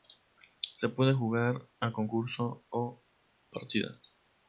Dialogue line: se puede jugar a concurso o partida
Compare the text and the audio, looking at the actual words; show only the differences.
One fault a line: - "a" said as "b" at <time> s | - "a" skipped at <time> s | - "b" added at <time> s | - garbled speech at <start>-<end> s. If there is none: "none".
none